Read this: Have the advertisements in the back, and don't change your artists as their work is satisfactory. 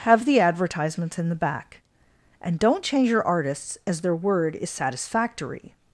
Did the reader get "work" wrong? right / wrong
wrong